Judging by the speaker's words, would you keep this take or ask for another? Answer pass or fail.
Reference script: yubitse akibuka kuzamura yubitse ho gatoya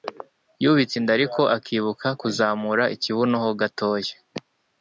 fail